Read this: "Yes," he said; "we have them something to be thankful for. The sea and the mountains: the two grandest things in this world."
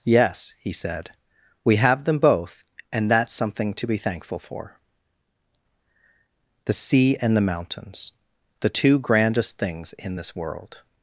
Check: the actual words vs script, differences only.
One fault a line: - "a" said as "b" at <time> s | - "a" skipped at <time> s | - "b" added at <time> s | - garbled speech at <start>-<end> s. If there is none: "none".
- "both and that's" added at 2.2 s